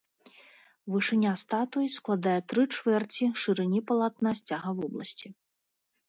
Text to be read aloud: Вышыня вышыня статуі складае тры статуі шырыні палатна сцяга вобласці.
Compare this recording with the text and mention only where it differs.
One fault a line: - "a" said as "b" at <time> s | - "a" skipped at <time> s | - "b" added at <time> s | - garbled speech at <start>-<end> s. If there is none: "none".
- "вышыня" skipped at 1.3 s
- "статуі" said as "чвэрці" at 2.7 s